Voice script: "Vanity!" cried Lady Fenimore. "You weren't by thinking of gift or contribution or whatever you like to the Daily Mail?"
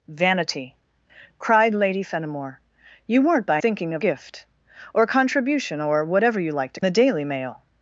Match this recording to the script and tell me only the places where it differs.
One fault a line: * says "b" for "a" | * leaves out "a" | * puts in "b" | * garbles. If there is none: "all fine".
all fine